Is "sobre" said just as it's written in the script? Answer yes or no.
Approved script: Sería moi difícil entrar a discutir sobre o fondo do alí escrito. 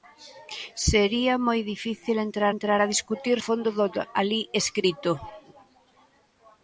no